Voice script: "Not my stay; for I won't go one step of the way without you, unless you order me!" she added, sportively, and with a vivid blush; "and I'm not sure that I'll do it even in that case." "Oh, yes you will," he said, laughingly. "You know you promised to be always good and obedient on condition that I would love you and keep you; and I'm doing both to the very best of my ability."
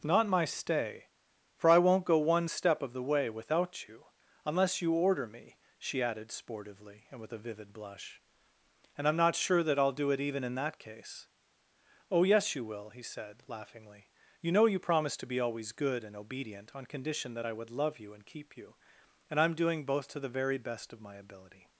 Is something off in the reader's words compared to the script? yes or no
no